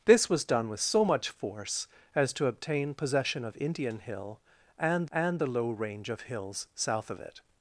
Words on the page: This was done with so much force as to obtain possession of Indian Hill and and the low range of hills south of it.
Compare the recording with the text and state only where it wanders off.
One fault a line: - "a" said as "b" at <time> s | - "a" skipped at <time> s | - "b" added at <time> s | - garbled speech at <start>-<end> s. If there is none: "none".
none